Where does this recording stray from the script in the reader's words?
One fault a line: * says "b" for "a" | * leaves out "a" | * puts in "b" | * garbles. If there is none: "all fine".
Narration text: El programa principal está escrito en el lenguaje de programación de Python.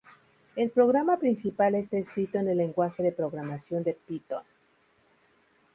all fine